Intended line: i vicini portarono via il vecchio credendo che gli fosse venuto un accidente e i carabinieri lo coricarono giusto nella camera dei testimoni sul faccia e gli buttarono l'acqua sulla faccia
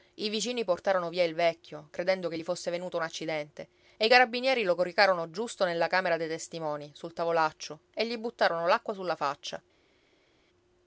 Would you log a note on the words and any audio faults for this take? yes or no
yes